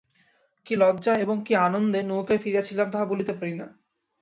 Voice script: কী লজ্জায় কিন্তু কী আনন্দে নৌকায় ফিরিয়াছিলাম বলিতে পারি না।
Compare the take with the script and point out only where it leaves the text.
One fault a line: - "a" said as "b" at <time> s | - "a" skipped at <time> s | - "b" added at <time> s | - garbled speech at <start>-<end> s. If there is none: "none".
- "কিন্তু" said as "এবং" at 1.2 s
- "তাহা" added at 2.9 s